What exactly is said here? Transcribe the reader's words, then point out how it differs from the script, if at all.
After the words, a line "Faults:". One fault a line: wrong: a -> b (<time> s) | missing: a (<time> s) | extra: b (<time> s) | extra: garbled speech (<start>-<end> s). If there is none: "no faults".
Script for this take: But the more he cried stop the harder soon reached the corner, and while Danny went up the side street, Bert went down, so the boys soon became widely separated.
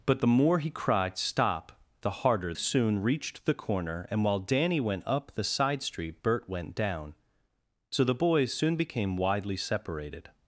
But the more he cried stop the harder soon reached the corner, and while Danny went up the side street, Bert went down, so the boys soon became widely separated.
Faults:
no faults